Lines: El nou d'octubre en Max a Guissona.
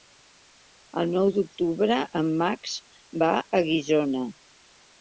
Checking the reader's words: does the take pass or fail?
fail